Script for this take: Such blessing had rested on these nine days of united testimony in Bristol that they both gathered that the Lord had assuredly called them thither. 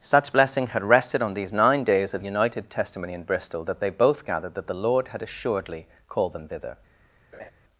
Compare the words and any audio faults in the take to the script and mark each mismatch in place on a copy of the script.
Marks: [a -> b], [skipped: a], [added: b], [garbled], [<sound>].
Such blessing had rested on these nine days of united testimony in Bristol that they both gathered that the Lord had assuredly called them thither. [laugh]